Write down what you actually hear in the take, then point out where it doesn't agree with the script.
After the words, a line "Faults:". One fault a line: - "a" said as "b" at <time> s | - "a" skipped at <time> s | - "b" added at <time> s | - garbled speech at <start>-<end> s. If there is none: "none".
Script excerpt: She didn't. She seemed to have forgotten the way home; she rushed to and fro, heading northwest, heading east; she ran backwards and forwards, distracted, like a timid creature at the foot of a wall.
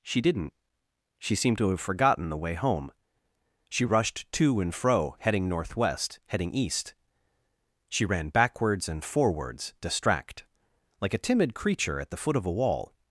She didn't. She seemed to have forgotten the way home; she rushed to and fro, heading northwest, heading east; she ran backwards and forwards, distract, like a timid creature at the foot of a wall.
Faults:
- "distracted" said as "distract" at 9.8 s